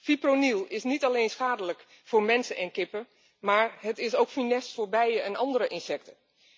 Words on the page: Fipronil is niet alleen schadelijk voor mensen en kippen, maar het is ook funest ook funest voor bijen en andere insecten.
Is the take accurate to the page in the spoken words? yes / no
no